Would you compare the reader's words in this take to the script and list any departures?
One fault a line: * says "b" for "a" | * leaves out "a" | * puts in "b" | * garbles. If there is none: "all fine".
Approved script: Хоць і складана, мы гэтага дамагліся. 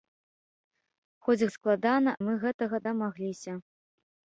all fine